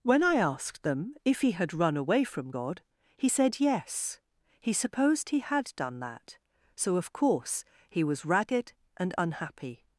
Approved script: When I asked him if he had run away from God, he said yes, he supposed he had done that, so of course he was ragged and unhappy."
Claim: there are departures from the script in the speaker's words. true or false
true